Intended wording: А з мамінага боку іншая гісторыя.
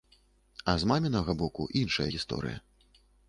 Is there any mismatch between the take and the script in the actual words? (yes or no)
no